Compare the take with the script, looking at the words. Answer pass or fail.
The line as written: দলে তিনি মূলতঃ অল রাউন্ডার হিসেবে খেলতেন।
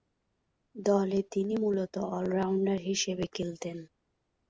pass